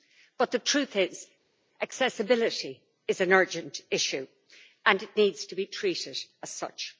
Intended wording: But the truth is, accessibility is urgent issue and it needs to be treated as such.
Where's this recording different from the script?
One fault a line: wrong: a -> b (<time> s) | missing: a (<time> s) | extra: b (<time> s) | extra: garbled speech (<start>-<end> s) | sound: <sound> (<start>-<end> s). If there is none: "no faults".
extra: an (3.2 s)